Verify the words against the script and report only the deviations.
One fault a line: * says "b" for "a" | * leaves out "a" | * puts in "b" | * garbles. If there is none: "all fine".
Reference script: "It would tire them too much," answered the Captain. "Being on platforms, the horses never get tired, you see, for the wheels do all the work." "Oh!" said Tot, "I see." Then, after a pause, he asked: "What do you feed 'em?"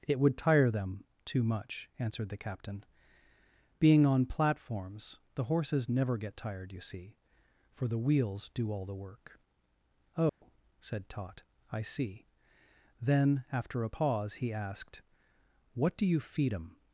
all fine